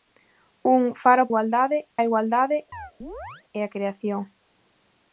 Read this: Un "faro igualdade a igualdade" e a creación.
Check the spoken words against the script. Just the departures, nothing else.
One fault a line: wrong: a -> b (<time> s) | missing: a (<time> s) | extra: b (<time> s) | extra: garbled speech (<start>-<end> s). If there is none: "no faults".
no faults